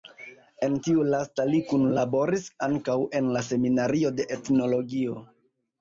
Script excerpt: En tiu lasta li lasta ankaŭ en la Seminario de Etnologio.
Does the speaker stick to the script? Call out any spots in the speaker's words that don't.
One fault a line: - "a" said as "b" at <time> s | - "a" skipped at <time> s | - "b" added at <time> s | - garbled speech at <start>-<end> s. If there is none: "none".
- "lasta" said as "kunlaboris" at 1.7 s